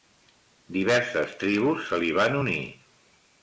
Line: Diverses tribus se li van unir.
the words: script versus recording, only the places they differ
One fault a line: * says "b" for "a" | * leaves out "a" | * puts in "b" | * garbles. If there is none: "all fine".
all fine